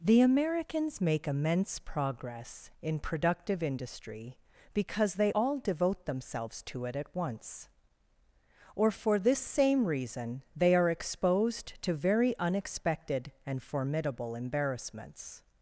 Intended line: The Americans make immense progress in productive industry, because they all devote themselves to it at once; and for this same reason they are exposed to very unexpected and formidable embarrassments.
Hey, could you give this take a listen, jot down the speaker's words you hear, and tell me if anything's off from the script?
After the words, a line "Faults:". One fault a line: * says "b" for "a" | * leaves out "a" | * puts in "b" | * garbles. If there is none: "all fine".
The Americans make immense progress in productive industry, because they all devote themselves to it at once; or for this same reason they are exposed to very unexpected and formidable embarrassments.
Faults:
* says "or" for "and"